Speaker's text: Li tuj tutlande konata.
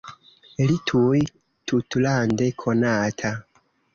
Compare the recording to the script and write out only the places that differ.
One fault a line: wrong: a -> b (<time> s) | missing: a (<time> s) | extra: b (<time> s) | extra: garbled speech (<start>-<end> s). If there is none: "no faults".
no faults